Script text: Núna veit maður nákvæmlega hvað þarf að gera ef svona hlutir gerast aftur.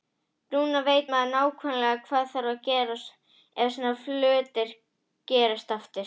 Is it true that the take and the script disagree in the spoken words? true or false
false